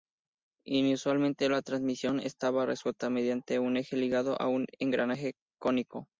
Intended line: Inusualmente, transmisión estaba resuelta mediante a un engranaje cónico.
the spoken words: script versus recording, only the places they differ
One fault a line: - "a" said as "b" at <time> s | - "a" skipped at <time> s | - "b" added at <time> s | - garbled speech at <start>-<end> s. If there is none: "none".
- "la" added at 1.5 s
- "un eje ligado" added at 3.6 s